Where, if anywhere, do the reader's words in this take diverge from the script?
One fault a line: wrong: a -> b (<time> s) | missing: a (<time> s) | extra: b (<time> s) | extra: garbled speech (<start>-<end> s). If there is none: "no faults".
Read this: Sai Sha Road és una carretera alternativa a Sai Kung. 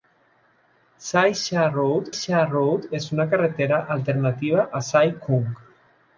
extra: Sha Road (2.2 s)